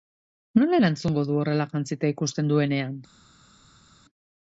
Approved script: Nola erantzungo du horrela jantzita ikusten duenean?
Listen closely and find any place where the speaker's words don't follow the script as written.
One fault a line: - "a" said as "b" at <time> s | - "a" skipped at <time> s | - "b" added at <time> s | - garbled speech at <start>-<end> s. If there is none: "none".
none